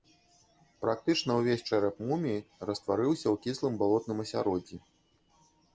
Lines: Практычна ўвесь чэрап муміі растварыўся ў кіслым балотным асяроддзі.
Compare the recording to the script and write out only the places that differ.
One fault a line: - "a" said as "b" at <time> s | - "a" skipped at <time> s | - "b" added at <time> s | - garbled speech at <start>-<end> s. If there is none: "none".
none